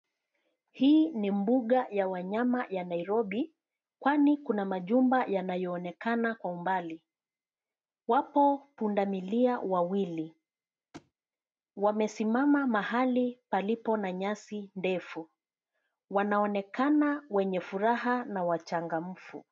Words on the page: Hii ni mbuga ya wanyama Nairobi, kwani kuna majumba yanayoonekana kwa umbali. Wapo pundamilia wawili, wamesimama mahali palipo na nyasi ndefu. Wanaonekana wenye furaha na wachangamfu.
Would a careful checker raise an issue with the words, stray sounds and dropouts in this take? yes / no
yes